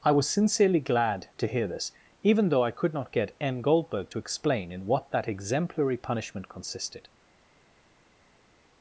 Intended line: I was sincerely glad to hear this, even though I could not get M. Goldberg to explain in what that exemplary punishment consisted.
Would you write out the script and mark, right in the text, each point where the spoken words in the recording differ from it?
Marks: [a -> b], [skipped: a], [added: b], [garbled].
I was sincerely glad to hear this, even though I could not get M. Goldberg to explain in what that exemplary punishment consisted.